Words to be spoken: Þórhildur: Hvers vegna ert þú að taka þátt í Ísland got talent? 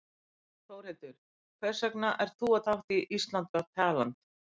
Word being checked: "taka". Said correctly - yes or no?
no